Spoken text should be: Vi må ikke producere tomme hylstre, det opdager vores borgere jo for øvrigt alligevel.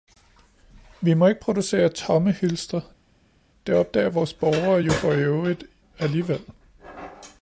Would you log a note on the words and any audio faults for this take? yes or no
no